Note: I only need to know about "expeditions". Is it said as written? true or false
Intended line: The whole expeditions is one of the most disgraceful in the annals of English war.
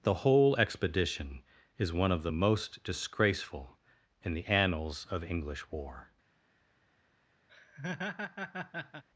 false